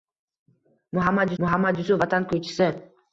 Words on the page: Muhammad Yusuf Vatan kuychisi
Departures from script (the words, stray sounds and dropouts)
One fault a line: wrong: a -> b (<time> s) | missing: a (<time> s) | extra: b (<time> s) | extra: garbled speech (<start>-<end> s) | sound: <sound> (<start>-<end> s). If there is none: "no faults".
extra: muhammad (1.4 s)